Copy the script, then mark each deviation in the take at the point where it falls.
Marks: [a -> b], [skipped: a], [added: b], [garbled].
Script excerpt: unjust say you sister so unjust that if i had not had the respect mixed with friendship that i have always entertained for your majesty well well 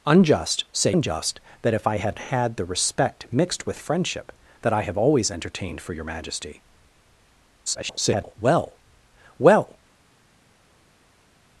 unjust say [skipped: you sister so] unjust that if i had [skipped: not] had the respect mixed with friendship that i have always entertained for your majesty [garbled] well well